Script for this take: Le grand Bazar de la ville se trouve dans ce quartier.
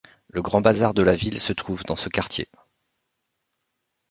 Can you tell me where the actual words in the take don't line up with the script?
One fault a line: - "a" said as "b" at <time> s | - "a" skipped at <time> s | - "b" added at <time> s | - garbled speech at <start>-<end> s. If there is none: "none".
none